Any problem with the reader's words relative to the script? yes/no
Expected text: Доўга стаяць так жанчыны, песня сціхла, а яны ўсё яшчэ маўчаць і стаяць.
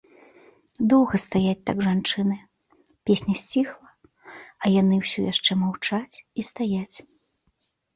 no